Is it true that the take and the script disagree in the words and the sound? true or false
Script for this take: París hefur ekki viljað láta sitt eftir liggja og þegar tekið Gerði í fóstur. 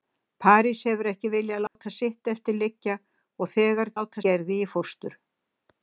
true